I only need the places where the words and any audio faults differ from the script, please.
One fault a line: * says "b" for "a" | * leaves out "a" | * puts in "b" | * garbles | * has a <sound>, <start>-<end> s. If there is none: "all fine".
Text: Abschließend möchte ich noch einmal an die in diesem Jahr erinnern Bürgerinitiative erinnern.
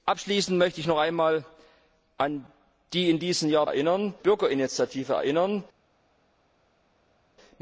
all fine